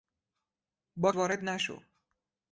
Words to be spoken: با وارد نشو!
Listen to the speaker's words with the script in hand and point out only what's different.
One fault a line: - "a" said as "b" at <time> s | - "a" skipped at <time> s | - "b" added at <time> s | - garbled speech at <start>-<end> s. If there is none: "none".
none